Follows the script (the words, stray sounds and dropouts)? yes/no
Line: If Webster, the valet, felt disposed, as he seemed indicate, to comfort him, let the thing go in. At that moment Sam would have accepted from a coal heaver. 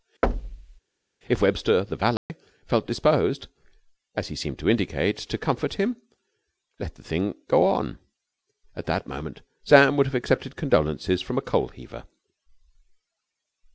no